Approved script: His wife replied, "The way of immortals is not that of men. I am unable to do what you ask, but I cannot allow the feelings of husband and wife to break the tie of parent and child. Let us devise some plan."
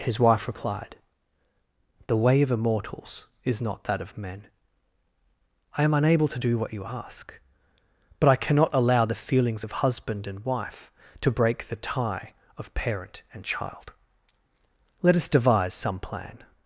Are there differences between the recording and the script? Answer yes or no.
no